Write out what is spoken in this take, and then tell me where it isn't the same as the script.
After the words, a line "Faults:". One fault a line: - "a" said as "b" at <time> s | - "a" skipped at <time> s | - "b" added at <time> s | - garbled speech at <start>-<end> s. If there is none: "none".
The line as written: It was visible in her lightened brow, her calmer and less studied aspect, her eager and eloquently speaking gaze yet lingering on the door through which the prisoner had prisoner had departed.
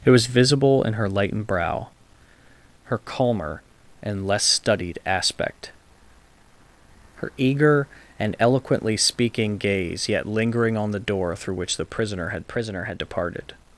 It was visible in her lightened brow, her calmer and less studied aspect, her eager and eloquently speaking gaze yet lingering on the door through which the prisoner had prisoner had departed.
Faults:
none